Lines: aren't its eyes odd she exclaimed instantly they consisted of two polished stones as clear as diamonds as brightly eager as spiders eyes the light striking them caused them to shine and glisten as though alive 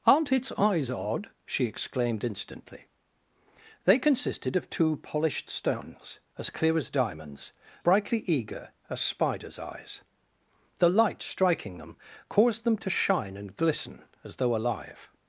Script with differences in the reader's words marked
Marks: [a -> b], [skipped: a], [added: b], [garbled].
aren't its eyes odd she exclaimed instantly they consisted of two polished stones as clear as diamonds [skipped: as] brightly eager as spiders eyes the light striking them caused them to shine and glisten as though alive